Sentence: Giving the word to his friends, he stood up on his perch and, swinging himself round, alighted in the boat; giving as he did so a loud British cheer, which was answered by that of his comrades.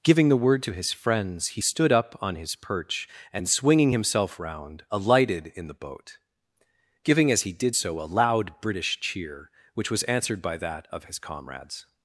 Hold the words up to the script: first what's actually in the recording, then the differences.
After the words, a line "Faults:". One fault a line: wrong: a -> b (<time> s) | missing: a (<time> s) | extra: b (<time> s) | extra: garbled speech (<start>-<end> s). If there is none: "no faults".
Giving the word to his friends, he stood up on his perch and, swinging himself round, alighted in the boat; giving as he did so a loud British cheer, which was answered by that of his comrades.
Faults:
no faults